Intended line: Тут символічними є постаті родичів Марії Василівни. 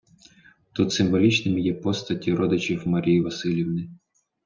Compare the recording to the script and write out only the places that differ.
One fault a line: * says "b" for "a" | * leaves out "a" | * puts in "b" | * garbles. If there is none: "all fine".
all fine